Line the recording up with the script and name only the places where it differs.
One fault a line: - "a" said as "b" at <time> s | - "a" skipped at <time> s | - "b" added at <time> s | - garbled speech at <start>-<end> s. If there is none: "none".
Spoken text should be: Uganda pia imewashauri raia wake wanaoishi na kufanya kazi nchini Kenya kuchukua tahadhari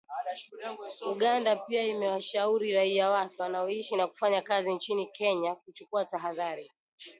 none